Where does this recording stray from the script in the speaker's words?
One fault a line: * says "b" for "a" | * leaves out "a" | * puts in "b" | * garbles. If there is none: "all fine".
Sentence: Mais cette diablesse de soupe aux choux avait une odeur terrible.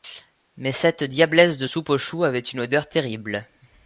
all fine